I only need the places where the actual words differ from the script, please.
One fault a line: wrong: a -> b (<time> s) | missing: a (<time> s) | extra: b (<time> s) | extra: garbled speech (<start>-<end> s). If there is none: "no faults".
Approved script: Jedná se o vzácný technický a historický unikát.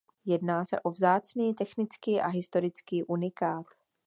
no faults